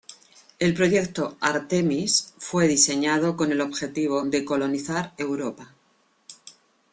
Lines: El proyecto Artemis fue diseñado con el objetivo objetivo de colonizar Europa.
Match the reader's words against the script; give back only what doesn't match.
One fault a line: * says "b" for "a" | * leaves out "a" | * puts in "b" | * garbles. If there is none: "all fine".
* leaves out "objetivo"